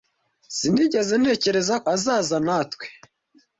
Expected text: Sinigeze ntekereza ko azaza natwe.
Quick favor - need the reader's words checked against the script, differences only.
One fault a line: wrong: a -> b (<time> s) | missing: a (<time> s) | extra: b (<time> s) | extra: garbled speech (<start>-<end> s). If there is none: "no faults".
missing: ko (1.8 s)